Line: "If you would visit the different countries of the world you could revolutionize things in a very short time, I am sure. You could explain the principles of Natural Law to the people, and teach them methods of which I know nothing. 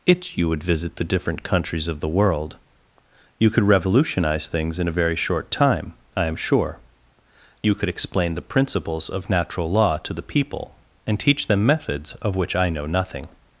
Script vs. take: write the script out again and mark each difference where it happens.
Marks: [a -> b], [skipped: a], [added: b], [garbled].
["If -> It] you would visit the different countries of the world you could revolutionize things in a very short time, I am sure. You could explain the principles of Natural Law to the people, and teach them methods of which I know nothing.